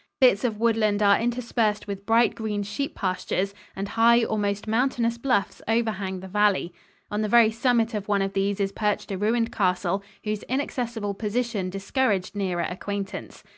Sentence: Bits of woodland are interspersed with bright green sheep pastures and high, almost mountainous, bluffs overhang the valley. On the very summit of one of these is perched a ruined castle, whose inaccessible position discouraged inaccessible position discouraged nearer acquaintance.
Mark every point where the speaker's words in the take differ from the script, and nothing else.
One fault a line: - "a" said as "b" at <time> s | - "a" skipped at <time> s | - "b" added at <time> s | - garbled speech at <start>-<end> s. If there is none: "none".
- "inaccessible position discouraged" skipped at 12.3 s